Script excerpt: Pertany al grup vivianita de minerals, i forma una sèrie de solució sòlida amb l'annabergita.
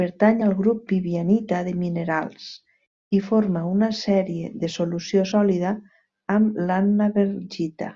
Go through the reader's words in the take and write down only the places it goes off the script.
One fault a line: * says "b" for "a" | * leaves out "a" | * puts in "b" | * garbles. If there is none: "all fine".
all fine